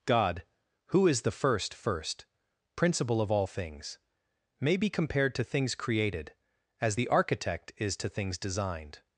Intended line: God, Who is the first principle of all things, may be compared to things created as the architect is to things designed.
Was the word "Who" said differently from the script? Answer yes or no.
no